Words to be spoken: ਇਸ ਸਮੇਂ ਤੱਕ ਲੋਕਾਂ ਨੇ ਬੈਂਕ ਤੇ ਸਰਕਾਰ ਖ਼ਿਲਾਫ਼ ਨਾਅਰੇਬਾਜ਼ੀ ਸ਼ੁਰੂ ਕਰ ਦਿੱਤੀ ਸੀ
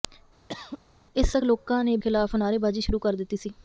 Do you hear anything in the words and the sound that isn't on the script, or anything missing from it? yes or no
yes